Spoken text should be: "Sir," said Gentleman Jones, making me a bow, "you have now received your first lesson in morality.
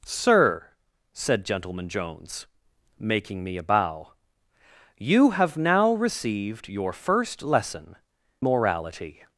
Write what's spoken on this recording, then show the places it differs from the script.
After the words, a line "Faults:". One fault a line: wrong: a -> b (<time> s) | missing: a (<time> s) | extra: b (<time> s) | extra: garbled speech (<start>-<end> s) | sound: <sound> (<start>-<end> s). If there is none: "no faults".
"Sir," said Gentleman Jones, making me a bow, "you have now received your first lesson morality.
Faults:
missing: in (8.0 s)